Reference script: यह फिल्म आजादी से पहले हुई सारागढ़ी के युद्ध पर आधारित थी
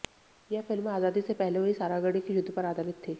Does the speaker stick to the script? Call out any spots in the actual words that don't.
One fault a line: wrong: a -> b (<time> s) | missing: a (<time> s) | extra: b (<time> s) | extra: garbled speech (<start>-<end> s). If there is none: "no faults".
no faults